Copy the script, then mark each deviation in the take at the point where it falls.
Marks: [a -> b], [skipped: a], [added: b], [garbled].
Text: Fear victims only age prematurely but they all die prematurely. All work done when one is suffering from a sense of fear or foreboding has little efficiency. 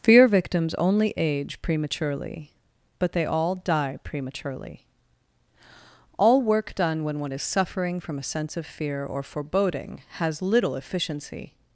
Fear victims only age prematurely but they all die prematurely. All work done when one is suffering from a sense of fear or foreboding has little efficiency.